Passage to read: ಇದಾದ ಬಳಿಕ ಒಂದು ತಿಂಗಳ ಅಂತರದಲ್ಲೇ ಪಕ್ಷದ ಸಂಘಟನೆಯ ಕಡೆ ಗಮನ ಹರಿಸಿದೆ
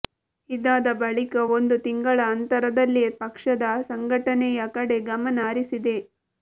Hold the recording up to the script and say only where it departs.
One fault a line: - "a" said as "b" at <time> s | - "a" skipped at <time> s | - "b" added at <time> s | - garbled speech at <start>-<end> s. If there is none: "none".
none